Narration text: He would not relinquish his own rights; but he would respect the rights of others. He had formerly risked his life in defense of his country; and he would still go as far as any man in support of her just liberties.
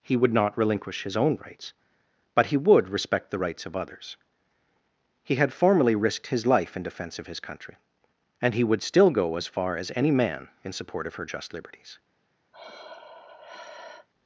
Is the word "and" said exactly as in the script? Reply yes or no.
yes